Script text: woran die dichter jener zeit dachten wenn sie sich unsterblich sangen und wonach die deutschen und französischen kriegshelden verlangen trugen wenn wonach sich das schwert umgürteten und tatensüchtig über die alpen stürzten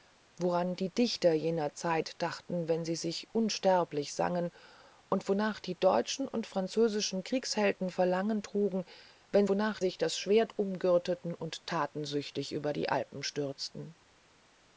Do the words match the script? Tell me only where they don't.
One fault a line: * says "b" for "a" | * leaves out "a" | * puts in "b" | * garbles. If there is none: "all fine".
all fine